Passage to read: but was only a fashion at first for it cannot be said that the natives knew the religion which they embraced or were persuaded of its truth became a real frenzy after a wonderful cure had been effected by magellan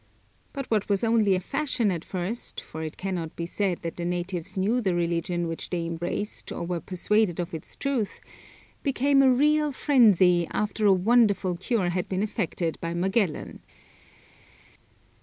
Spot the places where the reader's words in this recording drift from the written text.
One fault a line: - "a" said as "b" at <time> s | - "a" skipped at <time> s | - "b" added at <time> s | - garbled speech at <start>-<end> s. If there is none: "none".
- "what" added at 0.7 s